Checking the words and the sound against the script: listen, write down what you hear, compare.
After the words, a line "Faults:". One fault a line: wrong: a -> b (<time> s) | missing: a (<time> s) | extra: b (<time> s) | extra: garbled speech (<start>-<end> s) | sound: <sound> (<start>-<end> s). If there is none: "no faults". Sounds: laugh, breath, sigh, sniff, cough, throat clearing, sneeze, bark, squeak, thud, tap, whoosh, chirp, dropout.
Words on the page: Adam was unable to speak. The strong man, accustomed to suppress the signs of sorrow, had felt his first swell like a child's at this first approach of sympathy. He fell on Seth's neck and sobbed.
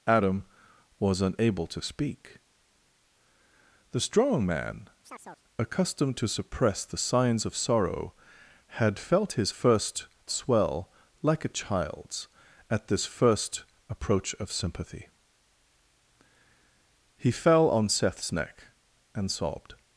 Adam was unable to speak. The strong man, accustomed to suppress the signs of sorrow, had felt his first swell like a child's at this first approach of sympathy. He fell on Seth's neck and sobbed.
Faults:
sound: chirp (5.0-5.4 s)